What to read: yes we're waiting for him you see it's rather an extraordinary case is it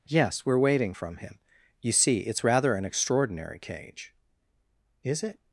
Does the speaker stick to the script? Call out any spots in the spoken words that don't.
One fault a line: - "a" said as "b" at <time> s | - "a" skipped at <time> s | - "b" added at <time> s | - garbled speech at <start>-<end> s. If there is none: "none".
- "for" said as "from" at 0.9 s
- "case" said as "cage" at 3.6 s